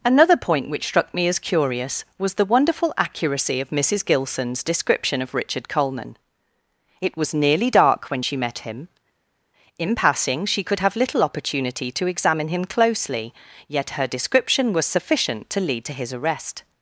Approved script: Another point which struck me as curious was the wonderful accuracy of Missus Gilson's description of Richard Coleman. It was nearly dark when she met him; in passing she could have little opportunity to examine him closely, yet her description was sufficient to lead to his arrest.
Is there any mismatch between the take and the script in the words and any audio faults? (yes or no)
no